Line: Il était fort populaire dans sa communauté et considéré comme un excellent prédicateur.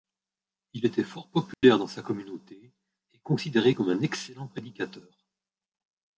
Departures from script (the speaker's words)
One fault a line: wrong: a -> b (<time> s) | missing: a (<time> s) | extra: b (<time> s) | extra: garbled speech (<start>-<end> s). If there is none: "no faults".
no faults